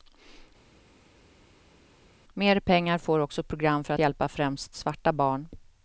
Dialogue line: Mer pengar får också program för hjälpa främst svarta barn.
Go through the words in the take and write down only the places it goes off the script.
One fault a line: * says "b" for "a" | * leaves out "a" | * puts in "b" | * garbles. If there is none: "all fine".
all fine